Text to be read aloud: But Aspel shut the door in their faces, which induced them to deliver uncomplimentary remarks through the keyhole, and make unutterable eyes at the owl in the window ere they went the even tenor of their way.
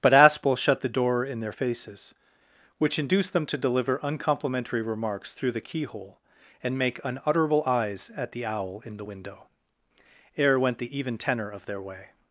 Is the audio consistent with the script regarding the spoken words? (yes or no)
no